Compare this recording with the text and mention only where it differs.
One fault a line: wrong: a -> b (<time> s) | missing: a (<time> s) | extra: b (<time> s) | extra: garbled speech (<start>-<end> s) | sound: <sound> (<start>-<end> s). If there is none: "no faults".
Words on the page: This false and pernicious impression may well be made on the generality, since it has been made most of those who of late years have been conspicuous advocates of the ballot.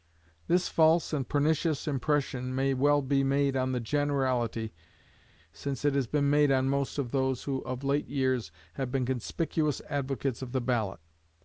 extra: on (6.5 s)